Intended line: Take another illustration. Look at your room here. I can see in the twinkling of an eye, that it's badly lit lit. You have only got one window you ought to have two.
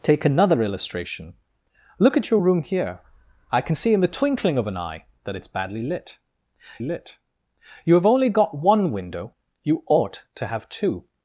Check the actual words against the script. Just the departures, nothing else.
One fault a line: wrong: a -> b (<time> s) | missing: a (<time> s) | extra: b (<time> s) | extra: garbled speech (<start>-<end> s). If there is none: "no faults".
no faults